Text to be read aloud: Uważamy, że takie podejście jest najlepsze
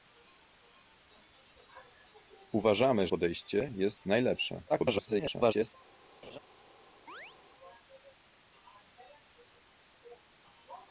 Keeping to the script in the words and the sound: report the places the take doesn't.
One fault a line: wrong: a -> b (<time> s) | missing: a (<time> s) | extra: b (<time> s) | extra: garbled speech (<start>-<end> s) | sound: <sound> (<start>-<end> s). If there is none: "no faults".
missing: że takie (3.1 s)
extra: garbled speech (4.7-5.7 s)
sound: laugh (6.2-6.4 s)
sound: chirp (7.1-7.4 s)